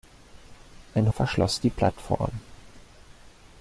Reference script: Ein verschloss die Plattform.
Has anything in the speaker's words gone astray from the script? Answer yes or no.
no